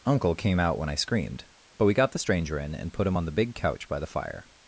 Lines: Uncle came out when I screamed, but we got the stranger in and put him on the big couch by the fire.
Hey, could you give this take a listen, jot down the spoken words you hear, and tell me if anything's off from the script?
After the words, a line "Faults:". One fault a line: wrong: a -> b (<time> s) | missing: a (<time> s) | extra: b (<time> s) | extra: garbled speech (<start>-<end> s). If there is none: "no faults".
Uncle came out when I screamed, but we got the stranger in and put him on the big couch by the fire.
Faults:
no faults